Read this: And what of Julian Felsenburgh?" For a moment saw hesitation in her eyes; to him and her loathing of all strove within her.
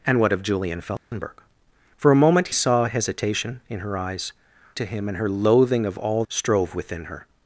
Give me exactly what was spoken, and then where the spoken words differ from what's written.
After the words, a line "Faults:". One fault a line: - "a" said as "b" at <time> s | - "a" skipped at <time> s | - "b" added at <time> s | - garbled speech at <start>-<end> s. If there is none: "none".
And what of Julian Felsenburgh?" For a moment saw hesitation in her eyes; to him and her loathing of all strove within her.
Faults:
none